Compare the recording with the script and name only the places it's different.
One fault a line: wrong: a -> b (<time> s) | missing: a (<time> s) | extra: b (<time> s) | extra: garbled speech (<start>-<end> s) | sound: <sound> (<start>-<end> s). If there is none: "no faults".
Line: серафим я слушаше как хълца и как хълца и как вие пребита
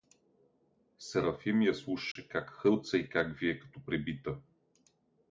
sound: dropout (2.1-2.2 s)
wrong: хълца и как вие -> вие като (3.4 s)